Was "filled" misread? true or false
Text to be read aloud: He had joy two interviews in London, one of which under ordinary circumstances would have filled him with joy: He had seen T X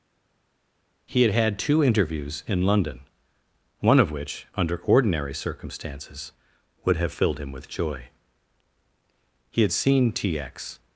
false